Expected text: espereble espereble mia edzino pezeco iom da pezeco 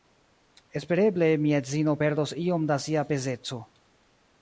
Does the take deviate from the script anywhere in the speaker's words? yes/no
yes